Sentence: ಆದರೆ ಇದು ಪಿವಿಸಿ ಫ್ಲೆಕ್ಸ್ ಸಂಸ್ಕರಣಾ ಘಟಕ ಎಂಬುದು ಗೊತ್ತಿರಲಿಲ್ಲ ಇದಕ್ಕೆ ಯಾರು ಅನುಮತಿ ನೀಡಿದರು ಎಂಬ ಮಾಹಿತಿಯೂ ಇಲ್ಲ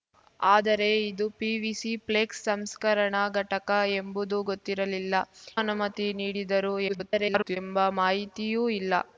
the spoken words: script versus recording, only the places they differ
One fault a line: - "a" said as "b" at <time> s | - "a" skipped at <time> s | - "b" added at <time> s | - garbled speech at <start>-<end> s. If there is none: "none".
- "ಇದಕ್ಕೆ ಯಾರು" skipped at 5.1 s
- garbled speech at 6.9-7.6 s